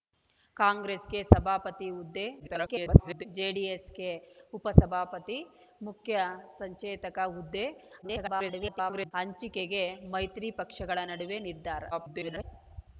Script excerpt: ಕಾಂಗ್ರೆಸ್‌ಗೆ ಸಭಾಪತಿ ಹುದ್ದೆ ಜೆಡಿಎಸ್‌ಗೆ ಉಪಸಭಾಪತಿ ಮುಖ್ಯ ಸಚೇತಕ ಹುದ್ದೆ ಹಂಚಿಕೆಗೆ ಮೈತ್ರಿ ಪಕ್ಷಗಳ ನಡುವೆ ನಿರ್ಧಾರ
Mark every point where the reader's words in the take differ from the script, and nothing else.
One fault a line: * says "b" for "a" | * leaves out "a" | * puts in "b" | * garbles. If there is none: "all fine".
* garbles
* garbles
* garbles